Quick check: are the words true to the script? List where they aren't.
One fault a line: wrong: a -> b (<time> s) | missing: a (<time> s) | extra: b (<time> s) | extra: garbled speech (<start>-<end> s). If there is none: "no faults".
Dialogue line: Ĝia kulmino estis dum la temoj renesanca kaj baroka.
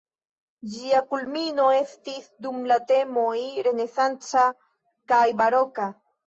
no faults